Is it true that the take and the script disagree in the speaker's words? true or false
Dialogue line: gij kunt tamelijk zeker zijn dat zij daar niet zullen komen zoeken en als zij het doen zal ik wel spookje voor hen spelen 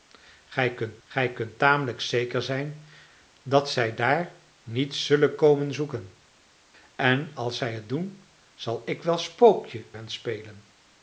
true